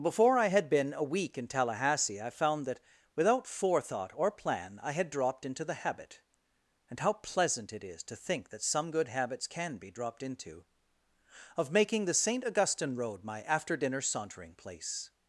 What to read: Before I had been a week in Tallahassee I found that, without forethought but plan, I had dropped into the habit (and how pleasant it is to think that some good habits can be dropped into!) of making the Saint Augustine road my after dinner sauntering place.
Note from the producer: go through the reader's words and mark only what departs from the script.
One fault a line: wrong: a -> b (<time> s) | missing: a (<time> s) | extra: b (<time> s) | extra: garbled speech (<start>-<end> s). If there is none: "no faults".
wrong: but -> or (4.2 s)